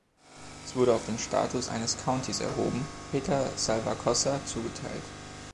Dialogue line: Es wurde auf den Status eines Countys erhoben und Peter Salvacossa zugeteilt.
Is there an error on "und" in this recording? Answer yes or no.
yes